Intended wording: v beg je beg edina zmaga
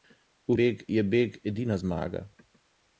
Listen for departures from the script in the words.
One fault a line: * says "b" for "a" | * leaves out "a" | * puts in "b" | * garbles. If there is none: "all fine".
all fine